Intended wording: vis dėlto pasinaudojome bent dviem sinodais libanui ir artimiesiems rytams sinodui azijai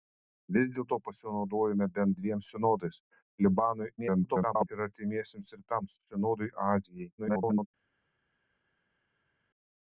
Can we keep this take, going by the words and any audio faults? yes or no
no